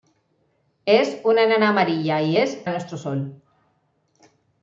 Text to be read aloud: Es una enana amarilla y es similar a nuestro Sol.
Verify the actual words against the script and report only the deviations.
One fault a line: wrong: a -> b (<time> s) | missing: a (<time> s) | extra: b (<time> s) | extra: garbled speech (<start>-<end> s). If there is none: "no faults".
missing: similar (2.6 s)